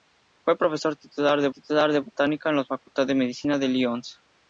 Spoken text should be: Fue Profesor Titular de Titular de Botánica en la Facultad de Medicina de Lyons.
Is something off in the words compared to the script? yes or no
no